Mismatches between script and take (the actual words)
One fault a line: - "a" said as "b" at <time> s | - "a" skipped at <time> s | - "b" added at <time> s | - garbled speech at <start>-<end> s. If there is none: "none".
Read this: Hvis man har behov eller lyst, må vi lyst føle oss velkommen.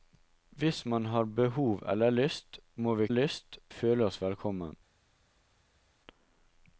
none